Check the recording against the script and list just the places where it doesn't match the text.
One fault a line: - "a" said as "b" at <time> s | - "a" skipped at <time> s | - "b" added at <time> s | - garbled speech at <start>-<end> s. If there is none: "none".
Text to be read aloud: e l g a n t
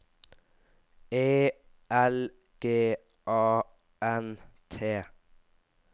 none